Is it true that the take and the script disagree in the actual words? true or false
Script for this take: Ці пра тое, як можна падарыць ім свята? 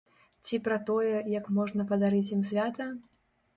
false